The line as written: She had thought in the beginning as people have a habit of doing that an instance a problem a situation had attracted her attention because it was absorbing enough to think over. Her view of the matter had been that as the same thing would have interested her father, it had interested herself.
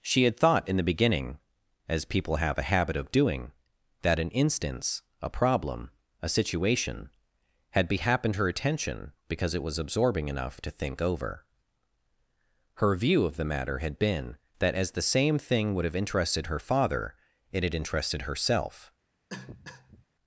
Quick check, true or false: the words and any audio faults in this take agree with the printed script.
false